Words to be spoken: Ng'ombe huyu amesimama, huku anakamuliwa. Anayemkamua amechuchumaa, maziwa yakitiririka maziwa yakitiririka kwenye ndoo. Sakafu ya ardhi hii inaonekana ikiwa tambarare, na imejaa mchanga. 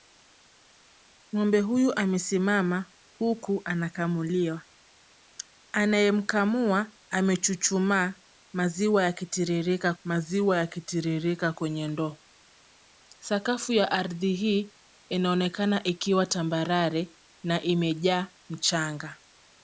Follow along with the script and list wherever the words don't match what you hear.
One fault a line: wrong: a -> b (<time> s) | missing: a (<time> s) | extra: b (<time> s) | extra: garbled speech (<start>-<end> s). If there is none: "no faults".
no faults